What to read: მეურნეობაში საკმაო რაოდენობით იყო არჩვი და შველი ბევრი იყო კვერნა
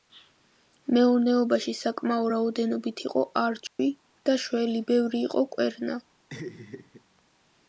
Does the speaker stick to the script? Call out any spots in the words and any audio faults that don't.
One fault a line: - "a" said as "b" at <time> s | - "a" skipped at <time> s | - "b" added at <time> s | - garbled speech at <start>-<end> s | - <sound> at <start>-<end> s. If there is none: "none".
- dropout at 3.7-3.8 s
- laugh at 6.3-7.0 s